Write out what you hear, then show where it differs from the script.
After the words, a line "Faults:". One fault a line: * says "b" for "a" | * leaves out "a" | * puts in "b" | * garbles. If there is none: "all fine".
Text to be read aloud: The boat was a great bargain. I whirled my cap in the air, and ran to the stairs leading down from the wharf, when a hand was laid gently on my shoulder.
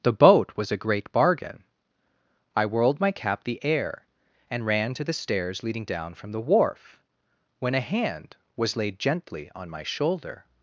The boat was a great bargain. I whirled my cap the air, and ran to the stairs leading down from the wharf, when a hand was laid gently on my shoulder.
Faults:
* leaves out "in"